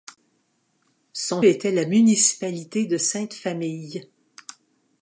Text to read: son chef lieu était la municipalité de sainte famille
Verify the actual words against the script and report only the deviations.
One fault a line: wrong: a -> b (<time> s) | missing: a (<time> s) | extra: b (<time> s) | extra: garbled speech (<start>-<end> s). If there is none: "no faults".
missing: chef lieu (1.4 s)